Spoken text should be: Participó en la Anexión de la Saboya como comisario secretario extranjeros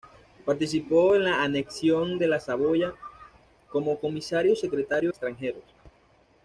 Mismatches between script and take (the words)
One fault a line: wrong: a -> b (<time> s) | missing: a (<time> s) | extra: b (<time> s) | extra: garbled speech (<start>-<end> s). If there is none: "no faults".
no faults